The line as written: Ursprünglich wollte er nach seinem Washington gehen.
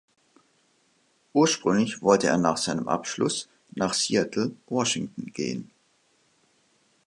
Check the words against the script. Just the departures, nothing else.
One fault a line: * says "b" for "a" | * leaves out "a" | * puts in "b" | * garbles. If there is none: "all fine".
* puts in "Abschluss nach Seattle"